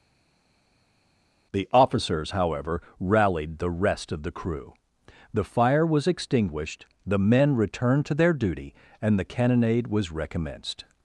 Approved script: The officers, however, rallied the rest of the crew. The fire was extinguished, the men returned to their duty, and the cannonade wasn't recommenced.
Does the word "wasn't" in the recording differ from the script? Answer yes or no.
yes